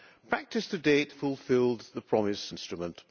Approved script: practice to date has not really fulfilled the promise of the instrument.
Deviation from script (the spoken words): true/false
true